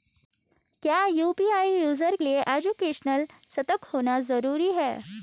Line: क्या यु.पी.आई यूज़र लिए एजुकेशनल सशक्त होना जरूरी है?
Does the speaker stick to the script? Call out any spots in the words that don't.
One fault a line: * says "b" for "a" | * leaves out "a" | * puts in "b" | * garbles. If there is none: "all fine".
all fine